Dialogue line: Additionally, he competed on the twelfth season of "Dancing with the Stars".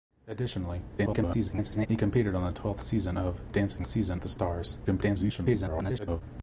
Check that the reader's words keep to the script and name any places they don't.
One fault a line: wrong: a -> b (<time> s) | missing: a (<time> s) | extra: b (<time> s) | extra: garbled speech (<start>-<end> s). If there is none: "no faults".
extra: garbled speech (1.0-1.9 s)
wrong: with -> season (3.8 s)
extra: garbled speech (4.8-6.2 s)